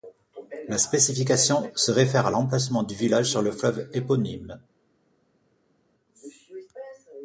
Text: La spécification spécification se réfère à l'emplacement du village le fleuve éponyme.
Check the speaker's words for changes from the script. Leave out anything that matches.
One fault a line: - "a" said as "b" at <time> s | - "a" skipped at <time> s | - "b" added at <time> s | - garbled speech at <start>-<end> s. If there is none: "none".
- "spécification" skipped at 1.7 s
- "sur" added at 3.3 s